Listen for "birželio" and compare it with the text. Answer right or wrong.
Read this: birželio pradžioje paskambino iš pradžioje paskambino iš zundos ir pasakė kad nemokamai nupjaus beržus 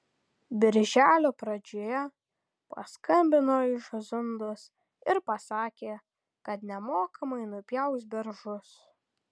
right